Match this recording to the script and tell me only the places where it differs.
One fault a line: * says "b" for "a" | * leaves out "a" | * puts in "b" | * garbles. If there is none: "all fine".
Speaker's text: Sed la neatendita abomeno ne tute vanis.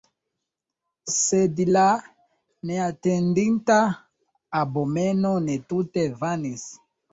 all fine